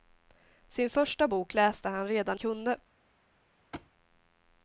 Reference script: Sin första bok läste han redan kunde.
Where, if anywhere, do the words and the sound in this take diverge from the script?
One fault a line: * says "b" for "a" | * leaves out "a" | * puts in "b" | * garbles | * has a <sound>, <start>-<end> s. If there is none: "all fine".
* has a thud, 3.7-3.9 s